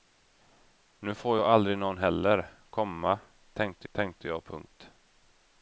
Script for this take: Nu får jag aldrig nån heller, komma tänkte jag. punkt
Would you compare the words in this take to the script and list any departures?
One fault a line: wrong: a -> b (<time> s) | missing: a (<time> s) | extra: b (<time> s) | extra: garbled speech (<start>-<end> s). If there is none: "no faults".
extra: tänkte (3.9 s)